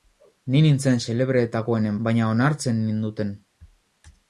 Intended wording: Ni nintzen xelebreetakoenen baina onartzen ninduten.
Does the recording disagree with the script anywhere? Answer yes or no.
no